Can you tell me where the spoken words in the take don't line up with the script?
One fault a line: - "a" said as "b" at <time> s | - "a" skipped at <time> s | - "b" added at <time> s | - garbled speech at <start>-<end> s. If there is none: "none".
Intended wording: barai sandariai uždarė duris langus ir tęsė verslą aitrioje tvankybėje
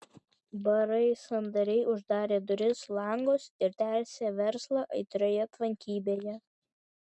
none